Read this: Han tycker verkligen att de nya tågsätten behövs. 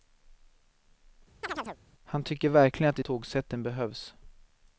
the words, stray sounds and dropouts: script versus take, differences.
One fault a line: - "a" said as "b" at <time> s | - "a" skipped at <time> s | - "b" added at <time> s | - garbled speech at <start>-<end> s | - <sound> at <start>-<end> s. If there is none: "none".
- chirp at 1.4-1.8 s
- "nya" skipped at 3.0 s